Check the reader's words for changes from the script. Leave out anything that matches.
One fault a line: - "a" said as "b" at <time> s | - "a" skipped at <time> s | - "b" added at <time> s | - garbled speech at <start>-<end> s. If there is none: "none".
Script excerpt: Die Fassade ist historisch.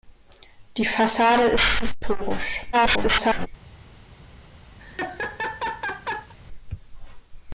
- garbled speech at 2.7-3.5 s